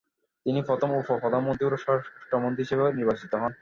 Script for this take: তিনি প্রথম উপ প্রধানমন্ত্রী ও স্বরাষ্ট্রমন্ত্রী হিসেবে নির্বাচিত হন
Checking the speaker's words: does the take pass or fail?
pass